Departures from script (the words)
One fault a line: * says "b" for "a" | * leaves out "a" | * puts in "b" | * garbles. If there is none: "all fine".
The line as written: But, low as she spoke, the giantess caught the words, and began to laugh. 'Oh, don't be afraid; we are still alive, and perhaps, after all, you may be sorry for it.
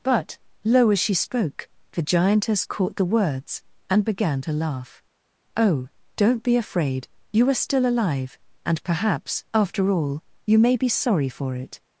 * says "you" for "we"